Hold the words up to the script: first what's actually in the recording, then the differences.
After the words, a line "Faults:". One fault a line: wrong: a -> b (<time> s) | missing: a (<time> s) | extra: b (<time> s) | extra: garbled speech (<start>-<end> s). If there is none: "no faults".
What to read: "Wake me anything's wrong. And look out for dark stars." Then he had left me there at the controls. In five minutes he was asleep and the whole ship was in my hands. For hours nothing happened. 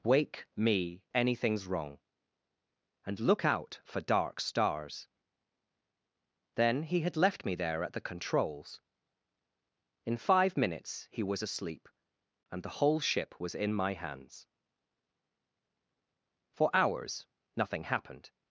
"Wake me anything's wrong. And look out for dark stars." Then he had left me there at the controls. In five minutes he was asleep and the whole ship was in my hands. For hours nothing happened.
Faults:
no faults